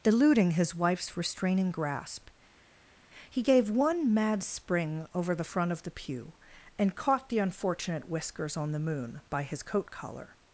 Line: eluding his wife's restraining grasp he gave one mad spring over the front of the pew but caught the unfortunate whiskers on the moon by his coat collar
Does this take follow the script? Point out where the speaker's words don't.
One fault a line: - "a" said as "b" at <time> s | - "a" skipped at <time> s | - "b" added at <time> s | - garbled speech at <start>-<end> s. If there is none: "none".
- "but" said as "and" at 6.8 s